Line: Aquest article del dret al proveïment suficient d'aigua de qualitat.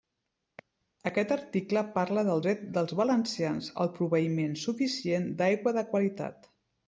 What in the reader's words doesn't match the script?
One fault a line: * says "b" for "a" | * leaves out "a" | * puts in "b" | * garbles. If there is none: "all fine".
* puts in "parla"
* puts in "dels valencians"